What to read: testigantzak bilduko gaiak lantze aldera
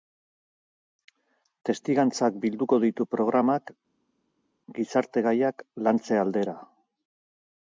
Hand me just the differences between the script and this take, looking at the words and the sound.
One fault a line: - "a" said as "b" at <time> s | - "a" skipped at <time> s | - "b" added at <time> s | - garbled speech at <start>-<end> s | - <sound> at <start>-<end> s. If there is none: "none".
- "ditu programak gizarte" added at 2.9 s